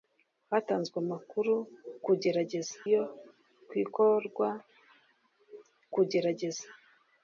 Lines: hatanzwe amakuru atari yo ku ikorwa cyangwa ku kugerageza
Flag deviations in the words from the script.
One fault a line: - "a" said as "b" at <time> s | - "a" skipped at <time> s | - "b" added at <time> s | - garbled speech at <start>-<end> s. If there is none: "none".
- "atari" said as "kugerageza" at 2.0 s
- "cyangwa ku" skipped at 4.5 s